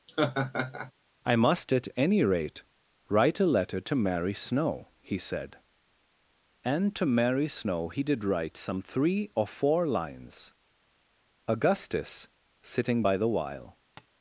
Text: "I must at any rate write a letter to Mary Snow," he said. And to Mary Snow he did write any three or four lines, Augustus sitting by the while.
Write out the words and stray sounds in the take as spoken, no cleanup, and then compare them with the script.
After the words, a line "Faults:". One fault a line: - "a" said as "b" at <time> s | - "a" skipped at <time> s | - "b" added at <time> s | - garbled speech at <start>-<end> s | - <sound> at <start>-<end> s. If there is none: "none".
"I must at any rate write a letter to Mary Snow," he said. And to Mary Snow he did write some three or four lines, Augustus sitting by the while.
Faults:
- laugh at 0.1-0.9 s
- "any" said as "some" at 8.6 s
- tap at 14.0-14.1 s